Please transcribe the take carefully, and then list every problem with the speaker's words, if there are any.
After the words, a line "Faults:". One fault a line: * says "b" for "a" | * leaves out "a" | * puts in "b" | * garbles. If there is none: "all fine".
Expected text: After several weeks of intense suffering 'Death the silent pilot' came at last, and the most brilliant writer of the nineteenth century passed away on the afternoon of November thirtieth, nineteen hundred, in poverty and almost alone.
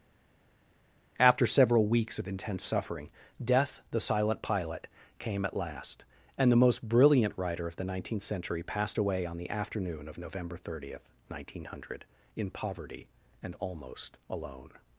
After several weeks of intense suffering 'Death the silent pilot' came at last, and the most brilliant writer of the nineteenth century passed away on the afternoon of November thirtieth, nineteen hundred, in poverty and almost alone.
Faults:
all fine